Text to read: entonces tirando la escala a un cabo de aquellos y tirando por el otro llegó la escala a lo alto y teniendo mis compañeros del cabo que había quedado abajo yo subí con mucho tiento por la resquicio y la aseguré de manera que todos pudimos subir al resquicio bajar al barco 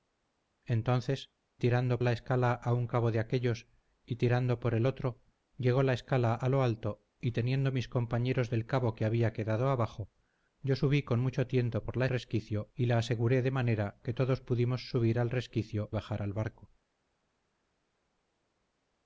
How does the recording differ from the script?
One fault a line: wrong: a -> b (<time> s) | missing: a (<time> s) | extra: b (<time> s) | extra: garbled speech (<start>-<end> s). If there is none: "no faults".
no faults